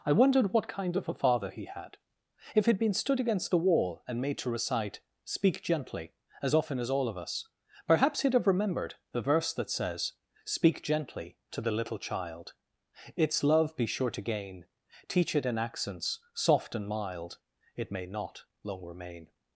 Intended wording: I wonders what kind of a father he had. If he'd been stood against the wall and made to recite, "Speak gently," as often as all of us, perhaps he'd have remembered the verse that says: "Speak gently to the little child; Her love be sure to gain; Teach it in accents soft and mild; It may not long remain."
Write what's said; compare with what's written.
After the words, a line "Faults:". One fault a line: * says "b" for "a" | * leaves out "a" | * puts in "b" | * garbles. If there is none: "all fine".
I wondered what kind of a father he had. If he'd been stood against the wall and made to recite, "Speak gently," as often as all of us, perhaps he'd have remembered the verse that says: "Speak gently to the little child; Its love be sure to gain; Teach it in accents soft and mild; It may not long remain."
Faults:
* says "wondered" for "wonders"
* says "Its" for "Her"